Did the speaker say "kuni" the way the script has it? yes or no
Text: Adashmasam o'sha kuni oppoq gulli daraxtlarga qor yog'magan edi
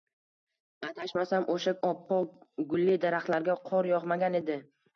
no